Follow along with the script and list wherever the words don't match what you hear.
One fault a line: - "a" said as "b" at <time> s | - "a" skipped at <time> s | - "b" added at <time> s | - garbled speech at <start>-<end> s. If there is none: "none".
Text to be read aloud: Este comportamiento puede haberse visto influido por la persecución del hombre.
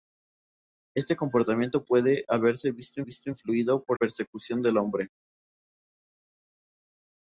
- "visto" added at 3.0 s
- "la" skipped at 4.0 s